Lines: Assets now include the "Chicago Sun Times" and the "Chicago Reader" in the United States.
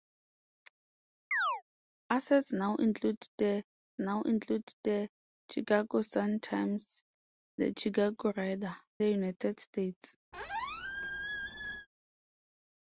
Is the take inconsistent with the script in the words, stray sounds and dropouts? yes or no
yes